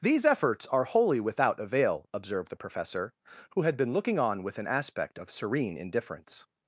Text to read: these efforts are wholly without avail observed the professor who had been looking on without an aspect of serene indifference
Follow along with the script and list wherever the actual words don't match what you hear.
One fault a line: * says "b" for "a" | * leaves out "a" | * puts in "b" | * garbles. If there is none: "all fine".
* says "with" for "without"